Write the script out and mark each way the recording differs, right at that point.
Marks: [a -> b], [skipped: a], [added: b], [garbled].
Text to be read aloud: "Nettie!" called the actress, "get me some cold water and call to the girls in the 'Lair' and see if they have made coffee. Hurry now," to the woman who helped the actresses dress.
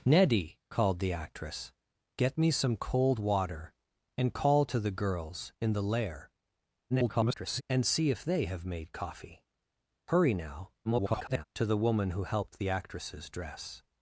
"Nettie!" called the actress, "get me some cold water and call to the girls in the 'Lair' [garbled] and see if they have made coffee. Hurry now," [garbled] to the woman who helped the actresses dress.